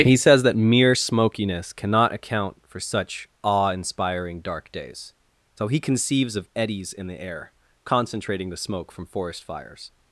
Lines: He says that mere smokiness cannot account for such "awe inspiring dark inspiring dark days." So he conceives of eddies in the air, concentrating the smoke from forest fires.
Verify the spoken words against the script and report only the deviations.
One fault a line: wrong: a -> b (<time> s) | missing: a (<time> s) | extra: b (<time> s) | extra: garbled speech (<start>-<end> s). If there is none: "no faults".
missing: inspiring dark (4.7 s)